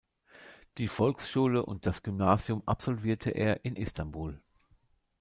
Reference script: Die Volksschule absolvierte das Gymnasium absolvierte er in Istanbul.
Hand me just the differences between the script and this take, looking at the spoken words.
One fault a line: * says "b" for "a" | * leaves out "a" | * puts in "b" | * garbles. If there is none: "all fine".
* says "und" for "absolvierte"